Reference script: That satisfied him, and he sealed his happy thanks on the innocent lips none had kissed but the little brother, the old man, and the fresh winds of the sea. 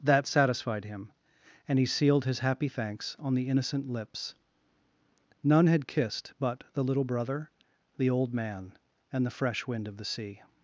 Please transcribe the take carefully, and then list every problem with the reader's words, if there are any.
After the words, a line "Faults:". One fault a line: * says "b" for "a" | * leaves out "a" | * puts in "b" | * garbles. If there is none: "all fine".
That satisfied him, and he sealed his happy thanks on the innocent lips none had kissed but the little brother, the old man, and the fresh wind of the sea.
Faults:
* says "wind" for "winds"